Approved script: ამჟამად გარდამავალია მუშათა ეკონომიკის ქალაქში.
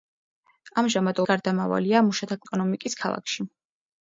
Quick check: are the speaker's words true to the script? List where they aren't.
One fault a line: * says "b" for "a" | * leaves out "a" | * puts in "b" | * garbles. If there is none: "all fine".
all fine